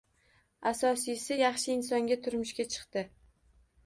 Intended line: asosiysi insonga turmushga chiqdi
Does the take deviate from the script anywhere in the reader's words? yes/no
yes